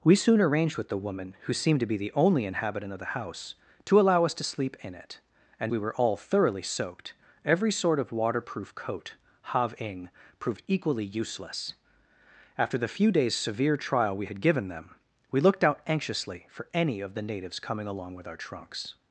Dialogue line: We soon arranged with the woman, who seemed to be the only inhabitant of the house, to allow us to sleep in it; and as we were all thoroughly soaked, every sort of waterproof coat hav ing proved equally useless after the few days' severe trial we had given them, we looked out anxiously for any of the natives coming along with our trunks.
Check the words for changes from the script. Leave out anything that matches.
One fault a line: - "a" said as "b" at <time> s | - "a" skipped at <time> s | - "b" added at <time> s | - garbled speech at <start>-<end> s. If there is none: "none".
- "as" skipped at 5.7 s